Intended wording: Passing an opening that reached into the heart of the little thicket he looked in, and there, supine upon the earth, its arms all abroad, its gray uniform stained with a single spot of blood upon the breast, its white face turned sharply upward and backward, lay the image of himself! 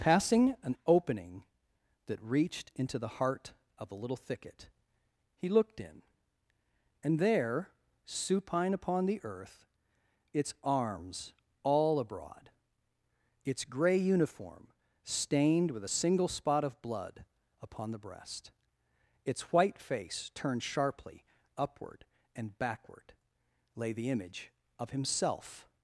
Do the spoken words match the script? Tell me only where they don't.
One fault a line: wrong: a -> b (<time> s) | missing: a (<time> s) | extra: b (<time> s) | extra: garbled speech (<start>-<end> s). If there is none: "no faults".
wrong: the -> a (3.9 s)